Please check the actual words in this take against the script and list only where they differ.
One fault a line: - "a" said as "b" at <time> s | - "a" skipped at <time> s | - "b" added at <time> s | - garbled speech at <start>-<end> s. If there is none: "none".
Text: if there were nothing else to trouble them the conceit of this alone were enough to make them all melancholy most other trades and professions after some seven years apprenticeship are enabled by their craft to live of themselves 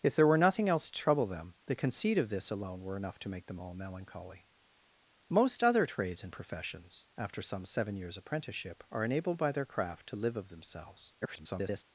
- garbled speech at 11.2-11.8 s